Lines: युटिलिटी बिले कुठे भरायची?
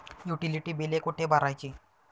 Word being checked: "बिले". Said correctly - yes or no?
yes